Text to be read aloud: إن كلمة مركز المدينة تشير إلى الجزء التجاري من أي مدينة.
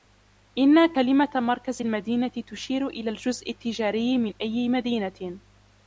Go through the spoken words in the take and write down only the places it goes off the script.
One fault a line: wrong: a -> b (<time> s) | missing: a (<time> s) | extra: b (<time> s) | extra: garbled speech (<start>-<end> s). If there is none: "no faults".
no faults